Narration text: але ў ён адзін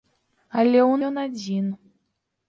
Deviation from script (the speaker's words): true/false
false